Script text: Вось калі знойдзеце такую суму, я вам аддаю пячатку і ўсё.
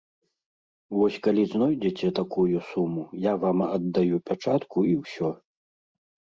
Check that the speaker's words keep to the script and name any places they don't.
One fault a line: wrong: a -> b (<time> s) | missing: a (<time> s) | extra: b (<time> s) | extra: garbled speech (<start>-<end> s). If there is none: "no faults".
no faults